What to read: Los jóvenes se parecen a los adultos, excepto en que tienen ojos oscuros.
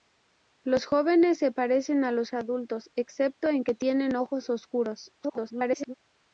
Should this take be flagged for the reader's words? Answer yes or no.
yes